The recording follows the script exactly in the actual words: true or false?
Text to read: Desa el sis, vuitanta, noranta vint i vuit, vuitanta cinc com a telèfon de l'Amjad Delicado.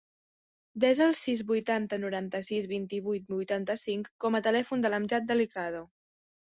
false